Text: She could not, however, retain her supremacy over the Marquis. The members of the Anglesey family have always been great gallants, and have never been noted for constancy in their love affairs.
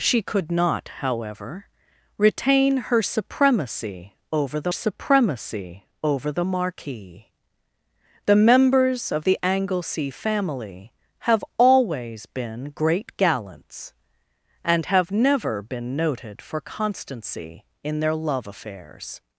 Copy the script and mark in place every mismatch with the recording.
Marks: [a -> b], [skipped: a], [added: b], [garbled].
She could not, however, retain her supremacy over the [added: supremacy over the] Marquis. The members of the Anglesey family have always been great gallants, and have never been noted for constancy in their love affairs.